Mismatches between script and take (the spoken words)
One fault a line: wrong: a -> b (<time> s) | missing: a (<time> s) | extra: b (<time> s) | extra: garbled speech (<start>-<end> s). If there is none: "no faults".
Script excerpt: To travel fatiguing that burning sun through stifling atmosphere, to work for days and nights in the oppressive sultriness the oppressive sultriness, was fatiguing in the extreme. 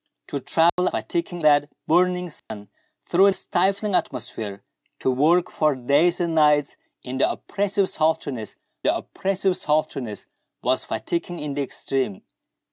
no faults